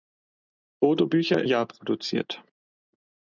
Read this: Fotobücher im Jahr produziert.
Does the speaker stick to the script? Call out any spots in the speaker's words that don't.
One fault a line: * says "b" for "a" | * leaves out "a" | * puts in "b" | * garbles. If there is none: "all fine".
* leaves out "im"